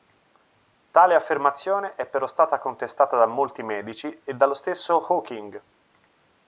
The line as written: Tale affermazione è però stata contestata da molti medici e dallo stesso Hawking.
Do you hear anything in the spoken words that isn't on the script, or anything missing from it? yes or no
no